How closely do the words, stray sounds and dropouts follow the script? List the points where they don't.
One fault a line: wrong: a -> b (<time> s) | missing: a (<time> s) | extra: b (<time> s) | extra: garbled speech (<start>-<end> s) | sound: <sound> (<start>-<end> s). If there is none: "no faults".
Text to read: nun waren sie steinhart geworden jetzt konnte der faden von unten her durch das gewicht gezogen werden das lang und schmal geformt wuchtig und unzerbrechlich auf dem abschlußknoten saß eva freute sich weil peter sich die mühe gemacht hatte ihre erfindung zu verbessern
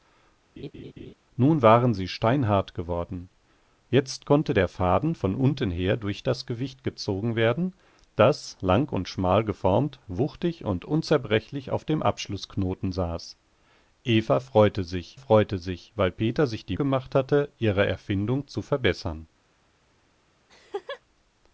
sound: laugh (0.6-1.1 s)
extra: freute sich (15.1 s)
missing: mühe (16.8 s)
sound: laugh (20.5-21.0 s)